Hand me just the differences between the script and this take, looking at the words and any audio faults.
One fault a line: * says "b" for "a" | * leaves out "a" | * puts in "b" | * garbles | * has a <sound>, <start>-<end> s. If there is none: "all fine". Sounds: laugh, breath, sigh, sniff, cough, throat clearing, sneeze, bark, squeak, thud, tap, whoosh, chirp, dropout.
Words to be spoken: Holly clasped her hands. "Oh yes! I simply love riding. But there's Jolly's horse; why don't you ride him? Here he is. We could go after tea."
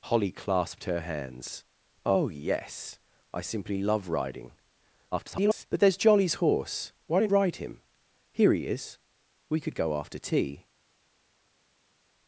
* garbles
* leaves out "you"